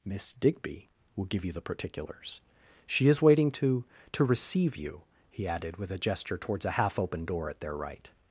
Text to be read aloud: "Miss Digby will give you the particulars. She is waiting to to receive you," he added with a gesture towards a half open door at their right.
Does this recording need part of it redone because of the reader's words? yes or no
no